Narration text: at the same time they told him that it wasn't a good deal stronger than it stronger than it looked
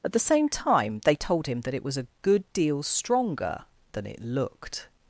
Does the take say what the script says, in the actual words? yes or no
no